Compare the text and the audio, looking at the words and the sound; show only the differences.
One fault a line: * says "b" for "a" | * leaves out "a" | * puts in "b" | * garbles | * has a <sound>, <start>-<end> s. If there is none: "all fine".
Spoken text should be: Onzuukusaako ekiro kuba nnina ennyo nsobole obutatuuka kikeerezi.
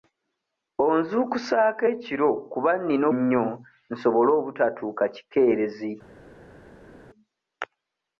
all fine